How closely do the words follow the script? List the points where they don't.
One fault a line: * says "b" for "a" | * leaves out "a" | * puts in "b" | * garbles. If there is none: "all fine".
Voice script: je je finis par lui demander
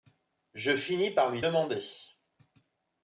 * leaves out "je"